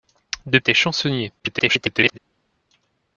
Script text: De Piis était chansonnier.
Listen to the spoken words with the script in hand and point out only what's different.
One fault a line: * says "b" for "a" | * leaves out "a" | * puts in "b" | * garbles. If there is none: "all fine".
* leaves out "Piis"
* garbles